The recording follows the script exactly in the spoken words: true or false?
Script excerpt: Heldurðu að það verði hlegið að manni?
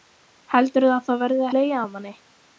true